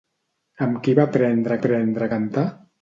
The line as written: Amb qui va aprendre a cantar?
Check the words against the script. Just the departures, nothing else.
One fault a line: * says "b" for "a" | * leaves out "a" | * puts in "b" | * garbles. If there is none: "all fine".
* puts in "aprendre"